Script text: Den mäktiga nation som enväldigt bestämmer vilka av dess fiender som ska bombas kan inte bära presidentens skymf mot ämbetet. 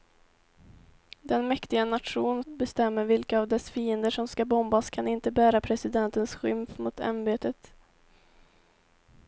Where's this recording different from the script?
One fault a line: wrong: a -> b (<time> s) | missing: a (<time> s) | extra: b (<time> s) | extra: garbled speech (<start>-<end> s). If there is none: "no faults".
missing: som enväldigt (2.4 s)